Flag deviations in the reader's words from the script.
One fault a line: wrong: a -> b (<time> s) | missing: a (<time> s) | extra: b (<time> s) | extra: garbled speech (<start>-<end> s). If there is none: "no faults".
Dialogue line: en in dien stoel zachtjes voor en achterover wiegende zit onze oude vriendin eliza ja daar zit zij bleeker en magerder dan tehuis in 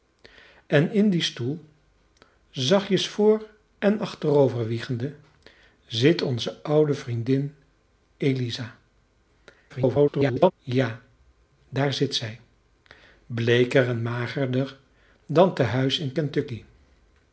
extra: garbled speech (9.7-10.5 s)